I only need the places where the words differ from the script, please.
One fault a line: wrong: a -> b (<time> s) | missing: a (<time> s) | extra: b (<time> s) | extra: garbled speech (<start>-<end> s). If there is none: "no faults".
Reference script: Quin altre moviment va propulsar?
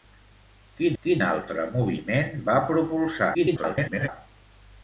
extra: quin (1.0 s)
extra: garbled speech (3.3-4.1 s)